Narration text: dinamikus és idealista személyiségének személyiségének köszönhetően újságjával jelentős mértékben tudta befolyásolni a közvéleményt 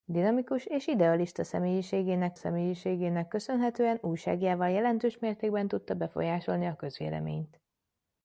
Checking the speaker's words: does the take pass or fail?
pass